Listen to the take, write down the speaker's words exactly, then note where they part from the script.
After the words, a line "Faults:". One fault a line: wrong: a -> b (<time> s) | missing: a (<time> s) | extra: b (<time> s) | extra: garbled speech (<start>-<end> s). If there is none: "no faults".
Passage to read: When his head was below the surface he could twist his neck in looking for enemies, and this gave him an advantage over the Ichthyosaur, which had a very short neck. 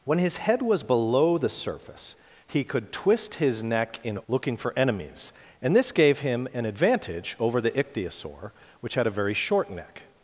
When his head was below the surface he could twist his neck in looking for enemies, and this gave him an advantage over the Ichthyosaur, which had a very short neck.
Faults:
no faults